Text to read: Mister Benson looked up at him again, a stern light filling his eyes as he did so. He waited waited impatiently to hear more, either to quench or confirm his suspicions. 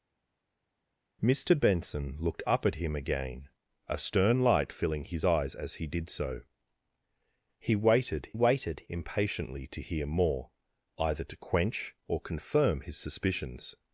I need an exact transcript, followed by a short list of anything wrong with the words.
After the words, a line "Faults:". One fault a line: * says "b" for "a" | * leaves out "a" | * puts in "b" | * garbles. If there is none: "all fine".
Mister Benson looked up at him again, a stern light filling his eyes as he did so. He waited waited impatiently to hear more, either to quench or confirm his suspicions.
Faults:
all fine